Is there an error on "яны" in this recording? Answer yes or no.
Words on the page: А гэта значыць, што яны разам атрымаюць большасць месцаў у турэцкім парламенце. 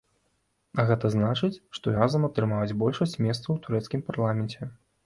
yes